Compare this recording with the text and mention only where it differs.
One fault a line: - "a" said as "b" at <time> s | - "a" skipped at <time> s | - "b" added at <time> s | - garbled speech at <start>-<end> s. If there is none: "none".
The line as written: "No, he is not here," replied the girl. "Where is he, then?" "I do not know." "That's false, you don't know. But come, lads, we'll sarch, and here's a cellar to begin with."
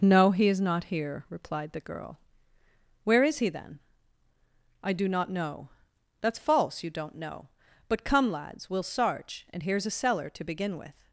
none